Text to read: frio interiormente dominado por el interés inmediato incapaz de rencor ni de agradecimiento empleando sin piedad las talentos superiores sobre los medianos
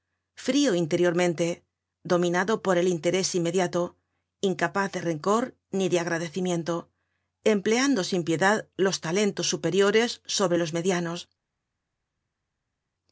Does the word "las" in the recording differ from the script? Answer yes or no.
yes